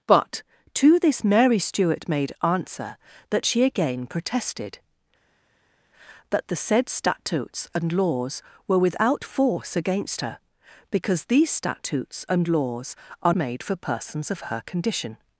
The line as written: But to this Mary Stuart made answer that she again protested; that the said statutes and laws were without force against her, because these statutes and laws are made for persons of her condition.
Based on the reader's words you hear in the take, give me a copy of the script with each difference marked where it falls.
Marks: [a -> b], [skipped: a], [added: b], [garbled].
But to this Mary Stuart made answer that she again protested; that the said statutes and laws were without force against her, because these statutes and laws are made for persons of her condition.